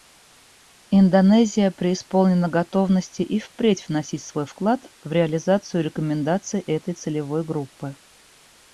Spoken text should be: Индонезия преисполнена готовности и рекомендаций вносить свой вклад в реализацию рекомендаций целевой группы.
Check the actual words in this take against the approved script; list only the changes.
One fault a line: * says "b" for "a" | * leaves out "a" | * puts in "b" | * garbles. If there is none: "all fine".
* says "впредь" for "рекомендаций"
* puts in "этой"